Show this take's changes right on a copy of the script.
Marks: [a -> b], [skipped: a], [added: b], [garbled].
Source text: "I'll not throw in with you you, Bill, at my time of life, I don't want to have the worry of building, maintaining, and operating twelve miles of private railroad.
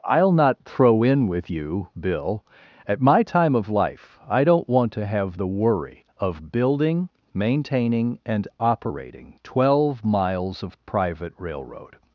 "I'll not throw in with you [skipped: you,] Bill, at my time of life, I don't want to have the worry of building, maintaining, and operating twelve miles of private railroad.